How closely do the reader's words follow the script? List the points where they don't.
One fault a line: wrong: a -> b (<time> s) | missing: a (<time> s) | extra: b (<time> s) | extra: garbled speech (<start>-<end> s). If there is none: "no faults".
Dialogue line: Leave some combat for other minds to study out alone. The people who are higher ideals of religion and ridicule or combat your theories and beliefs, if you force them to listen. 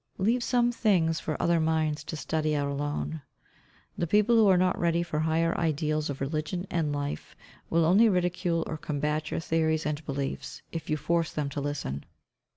wrong: combat -> things (0.7 s)
extra: not ready for (4.5 s)
extra: life will only (6.9 s)